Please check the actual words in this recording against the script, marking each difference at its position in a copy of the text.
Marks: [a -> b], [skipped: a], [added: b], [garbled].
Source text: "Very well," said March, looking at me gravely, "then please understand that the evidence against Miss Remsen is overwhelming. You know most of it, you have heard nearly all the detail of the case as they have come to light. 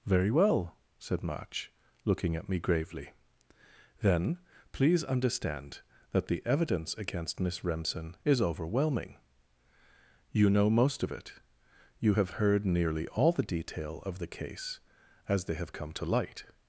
"Very well," said March, looking at me gravely, "then please understand that the evidence against Miss Remsen is overwhelming. You know most of it, you have heard nearly all the detail of the case as they have come to light.